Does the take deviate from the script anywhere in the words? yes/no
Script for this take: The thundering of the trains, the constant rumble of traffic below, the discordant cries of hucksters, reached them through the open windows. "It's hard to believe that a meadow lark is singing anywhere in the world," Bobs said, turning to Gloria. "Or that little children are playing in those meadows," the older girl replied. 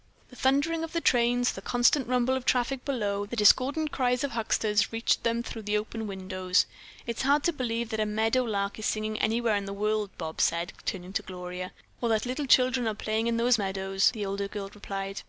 no